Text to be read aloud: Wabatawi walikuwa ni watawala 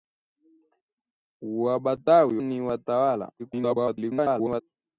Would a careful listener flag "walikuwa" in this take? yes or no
yes